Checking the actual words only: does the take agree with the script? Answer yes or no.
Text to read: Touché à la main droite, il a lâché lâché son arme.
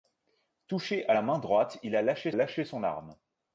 yes